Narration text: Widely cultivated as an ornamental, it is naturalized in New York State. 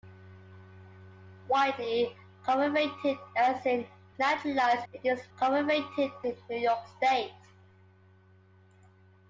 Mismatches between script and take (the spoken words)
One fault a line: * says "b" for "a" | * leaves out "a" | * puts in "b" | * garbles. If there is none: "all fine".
* says "naturalized" for "ornamental"
* says "cultivated" for "naturalized"